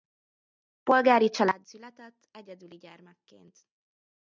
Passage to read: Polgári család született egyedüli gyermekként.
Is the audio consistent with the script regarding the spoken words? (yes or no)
yes